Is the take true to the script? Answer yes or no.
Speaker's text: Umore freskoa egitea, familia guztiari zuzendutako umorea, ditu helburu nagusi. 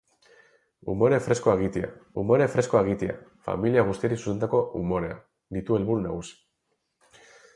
no